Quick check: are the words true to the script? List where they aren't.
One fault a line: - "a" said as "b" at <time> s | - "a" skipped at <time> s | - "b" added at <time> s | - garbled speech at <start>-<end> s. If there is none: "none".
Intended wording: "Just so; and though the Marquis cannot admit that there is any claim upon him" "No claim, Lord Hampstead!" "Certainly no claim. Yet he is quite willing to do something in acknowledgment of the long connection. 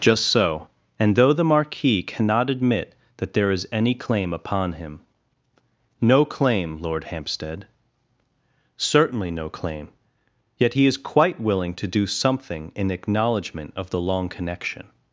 none